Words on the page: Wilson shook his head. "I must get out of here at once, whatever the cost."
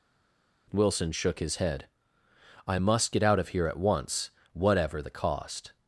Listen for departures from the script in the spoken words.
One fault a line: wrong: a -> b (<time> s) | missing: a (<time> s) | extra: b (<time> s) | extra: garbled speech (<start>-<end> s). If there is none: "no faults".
no faults